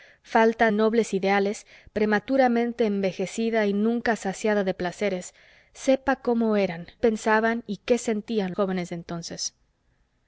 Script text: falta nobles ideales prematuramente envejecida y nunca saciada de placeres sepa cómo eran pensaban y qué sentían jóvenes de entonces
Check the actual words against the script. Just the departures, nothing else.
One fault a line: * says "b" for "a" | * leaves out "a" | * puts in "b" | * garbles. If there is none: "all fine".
all fine